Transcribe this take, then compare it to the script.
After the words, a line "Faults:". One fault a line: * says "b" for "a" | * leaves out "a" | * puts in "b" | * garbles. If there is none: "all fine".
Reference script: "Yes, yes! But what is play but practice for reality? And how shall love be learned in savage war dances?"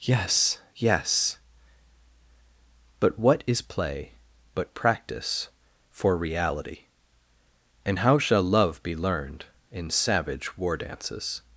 "Yes, yes! But what is play but practice for reality? And how shall love be learned in savage war dances?"
Faults:
all fine